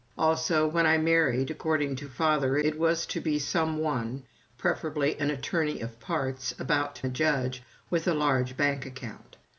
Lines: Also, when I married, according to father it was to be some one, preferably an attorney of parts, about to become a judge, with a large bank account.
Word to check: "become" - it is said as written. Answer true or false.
false